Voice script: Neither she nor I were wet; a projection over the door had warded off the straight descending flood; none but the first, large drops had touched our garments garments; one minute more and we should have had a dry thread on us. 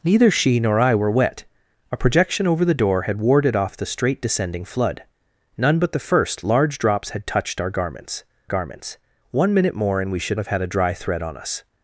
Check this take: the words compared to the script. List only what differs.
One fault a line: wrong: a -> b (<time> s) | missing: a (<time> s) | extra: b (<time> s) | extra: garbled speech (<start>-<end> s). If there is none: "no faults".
no faults